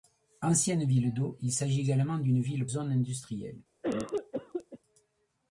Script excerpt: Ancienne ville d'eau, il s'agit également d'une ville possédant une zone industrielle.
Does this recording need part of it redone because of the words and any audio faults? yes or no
yes